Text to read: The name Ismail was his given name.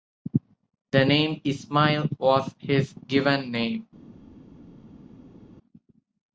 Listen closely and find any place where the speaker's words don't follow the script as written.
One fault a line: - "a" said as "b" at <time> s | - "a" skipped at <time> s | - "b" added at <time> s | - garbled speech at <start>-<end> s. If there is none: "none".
none